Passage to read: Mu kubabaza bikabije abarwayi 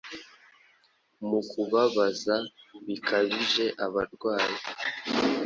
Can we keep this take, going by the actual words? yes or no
yes